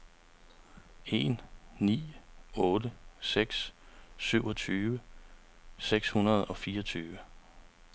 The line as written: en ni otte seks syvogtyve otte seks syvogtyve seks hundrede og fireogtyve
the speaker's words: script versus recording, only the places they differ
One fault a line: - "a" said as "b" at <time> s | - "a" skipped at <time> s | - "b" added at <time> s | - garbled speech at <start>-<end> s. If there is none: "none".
- "otte seks syvogtyve" skipped at 5.0 s